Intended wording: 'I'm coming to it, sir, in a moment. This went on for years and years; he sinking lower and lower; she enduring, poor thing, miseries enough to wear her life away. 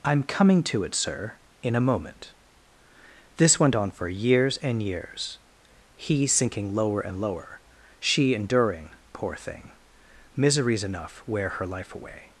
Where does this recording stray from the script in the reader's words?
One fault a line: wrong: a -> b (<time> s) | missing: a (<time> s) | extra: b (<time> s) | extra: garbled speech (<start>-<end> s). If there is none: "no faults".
missing: to (11.2 s)